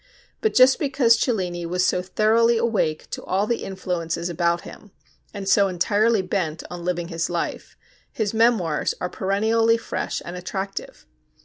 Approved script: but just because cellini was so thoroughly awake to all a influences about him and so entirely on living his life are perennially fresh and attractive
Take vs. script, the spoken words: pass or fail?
fail